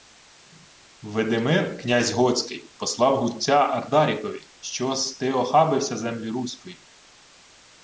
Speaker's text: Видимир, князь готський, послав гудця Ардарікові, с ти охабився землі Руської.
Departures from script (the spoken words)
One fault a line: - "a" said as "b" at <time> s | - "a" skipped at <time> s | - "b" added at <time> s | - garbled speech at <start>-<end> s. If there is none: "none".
- "що" added at 4.6 s